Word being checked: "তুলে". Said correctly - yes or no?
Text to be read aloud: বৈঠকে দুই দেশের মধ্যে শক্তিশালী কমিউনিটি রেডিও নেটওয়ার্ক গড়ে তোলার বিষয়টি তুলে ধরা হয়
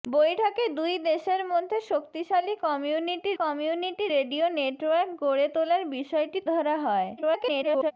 no